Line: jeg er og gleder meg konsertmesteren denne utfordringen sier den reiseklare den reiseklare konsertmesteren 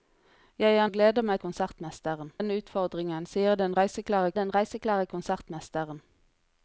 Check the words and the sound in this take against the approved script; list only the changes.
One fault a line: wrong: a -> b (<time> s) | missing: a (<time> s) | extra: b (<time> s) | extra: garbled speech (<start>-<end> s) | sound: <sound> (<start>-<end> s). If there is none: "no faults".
no faults